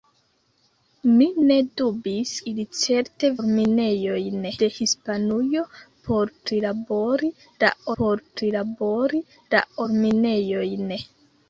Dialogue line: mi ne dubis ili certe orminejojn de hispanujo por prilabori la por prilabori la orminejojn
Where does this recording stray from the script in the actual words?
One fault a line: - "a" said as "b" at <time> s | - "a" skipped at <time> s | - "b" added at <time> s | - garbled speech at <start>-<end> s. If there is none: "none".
none